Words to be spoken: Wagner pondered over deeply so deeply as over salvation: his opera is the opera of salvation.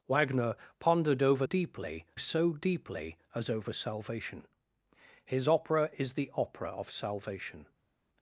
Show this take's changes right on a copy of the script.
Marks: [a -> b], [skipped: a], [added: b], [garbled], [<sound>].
Wagner pondered over deeply so deeply as over salvation: his opera is the opera of salvation.